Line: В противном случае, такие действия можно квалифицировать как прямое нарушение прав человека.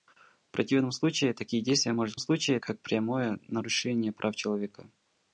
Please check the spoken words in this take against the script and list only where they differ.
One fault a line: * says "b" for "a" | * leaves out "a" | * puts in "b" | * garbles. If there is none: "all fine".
* says "случае" for "квалифицировать"